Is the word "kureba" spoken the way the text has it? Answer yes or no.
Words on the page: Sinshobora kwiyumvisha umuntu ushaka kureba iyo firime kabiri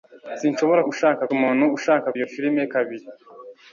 no